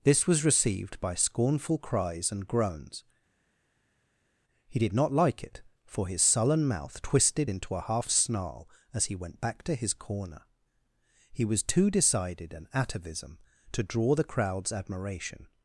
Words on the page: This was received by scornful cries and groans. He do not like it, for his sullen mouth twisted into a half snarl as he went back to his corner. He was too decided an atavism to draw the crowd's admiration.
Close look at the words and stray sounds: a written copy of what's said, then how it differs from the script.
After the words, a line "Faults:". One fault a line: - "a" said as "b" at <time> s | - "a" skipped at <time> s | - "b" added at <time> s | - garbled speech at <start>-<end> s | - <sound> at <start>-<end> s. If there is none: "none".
This was received by scornful cries and groans. He did not like it, for his sullen mouth twisted into a half snarl as he went back to his corner. He was too decided an atavism to draw the crowd's admiration.
Faults:
- "do" said as "did" at 4.8 s